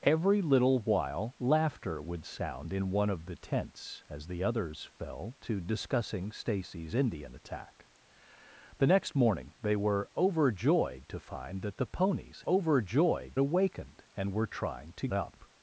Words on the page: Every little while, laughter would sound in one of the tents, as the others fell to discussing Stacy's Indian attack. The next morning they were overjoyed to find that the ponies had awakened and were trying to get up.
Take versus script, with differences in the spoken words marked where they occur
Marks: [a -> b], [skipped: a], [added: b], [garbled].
Every little while, laughter would sound in one of the tents, as the others fell to discussing Stacy's Indian attack. The next morning they were overjoyed to find that the ponies [had -> overjoyed] awakened and were trying to [skipped: get] up.